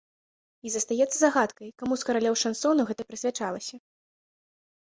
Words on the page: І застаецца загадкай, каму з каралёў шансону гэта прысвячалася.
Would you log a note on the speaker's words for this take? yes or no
no